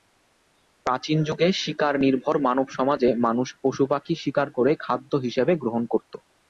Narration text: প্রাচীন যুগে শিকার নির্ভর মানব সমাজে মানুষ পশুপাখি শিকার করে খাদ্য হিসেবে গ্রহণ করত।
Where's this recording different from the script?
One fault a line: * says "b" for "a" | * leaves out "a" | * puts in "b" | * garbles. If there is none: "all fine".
all fine